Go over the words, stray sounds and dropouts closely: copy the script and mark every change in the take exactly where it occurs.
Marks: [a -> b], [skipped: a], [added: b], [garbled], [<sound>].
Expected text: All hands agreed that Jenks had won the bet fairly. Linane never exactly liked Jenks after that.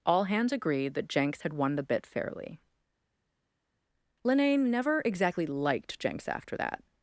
All hands agreed that Jenks had won the [bet -> bit] fairly. Linane never exactly liked Jenks after that.